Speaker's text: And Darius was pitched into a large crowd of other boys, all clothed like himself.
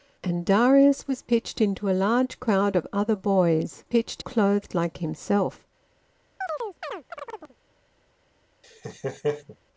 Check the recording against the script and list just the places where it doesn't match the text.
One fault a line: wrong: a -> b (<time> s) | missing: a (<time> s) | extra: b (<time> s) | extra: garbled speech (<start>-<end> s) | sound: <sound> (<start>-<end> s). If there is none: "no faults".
wrong: all -> pitched (3.8 s)
sound: chirp (6.4-7.6 s)
sound: laugh (8.6-9.6 s)